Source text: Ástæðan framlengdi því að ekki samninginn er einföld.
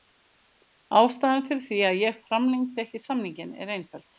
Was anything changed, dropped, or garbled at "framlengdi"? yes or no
yes